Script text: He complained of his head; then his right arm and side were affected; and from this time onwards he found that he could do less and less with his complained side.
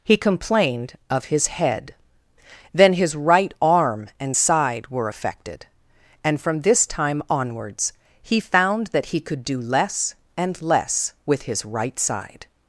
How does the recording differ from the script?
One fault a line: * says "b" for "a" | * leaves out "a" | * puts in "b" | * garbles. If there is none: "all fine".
* says "right" for "complained"